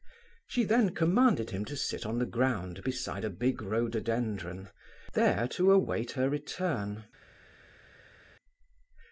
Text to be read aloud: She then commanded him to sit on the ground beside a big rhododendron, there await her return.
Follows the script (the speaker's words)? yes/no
no